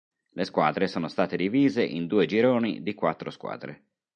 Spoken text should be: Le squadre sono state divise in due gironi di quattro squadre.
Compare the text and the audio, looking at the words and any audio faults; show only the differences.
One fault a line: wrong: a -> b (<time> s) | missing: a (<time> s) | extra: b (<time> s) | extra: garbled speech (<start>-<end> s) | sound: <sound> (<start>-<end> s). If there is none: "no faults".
no faults